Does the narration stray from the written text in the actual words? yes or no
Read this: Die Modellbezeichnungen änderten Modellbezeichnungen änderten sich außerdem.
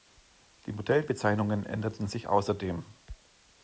yes